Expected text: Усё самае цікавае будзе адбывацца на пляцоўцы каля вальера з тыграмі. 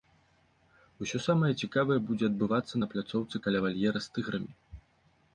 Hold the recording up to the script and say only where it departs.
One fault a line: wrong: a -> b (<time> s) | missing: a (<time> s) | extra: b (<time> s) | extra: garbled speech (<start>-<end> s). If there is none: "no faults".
no faults